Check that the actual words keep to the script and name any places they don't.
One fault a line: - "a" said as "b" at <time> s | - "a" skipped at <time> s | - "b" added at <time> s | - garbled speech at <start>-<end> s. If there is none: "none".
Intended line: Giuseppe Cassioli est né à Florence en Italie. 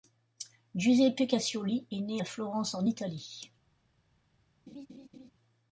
none